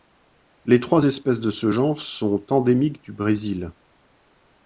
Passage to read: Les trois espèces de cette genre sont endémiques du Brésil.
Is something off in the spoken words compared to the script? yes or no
yes